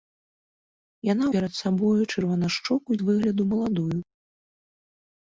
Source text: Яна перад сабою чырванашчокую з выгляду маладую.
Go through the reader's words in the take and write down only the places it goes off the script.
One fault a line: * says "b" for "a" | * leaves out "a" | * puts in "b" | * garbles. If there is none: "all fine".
all fine